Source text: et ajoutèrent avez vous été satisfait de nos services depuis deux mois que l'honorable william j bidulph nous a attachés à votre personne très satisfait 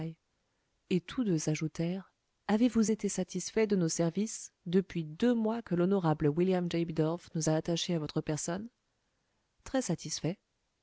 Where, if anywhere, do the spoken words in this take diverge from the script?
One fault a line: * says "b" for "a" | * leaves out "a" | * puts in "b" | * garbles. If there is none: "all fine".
* puts in "tous deux"